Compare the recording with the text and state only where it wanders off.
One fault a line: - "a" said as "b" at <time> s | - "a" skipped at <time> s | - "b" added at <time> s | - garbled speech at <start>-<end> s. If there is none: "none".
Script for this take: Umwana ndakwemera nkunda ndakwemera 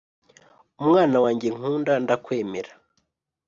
- "ndakwemera" said as "wanjye" at 1.2 s